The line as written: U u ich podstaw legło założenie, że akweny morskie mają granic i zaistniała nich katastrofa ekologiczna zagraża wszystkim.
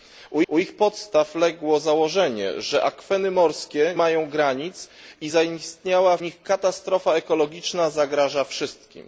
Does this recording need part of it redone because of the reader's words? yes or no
no